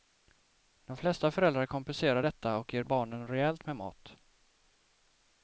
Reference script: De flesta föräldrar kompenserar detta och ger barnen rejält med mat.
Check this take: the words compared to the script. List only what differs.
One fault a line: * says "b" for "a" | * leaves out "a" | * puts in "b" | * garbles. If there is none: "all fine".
all fine